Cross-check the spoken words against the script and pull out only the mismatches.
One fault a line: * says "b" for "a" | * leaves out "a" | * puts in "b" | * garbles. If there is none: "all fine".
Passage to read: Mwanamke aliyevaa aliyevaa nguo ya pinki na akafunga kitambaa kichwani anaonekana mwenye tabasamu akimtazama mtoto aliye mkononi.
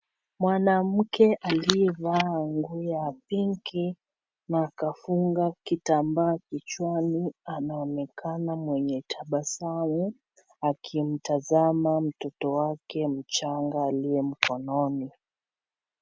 * leaves out "aliyevaa"
* puts in "wake mchanga"